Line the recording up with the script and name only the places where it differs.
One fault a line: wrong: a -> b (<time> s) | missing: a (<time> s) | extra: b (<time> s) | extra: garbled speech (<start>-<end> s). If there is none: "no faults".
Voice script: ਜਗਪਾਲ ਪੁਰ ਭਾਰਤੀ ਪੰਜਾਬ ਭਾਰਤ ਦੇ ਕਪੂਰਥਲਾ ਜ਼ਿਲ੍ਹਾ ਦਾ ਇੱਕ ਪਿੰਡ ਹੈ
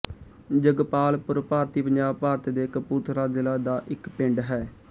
no faults